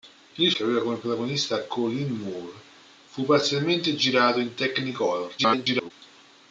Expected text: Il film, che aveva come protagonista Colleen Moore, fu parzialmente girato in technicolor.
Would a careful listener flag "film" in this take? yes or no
yes